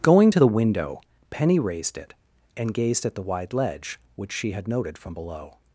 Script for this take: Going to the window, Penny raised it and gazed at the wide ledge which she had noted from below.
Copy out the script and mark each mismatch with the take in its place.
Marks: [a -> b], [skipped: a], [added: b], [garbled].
Going to the window, Penny raised it and gazed at the wide ledge which she had noted from below.